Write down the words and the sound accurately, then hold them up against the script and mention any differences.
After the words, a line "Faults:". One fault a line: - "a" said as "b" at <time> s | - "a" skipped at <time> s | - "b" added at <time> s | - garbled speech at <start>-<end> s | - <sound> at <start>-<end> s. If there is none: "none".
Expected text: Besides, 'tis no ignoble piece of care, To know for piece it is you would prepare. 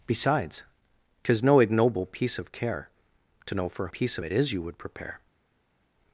Besides, 'tis no ignoble piece of care, To know for piece it is you would prepare.
Faults:
none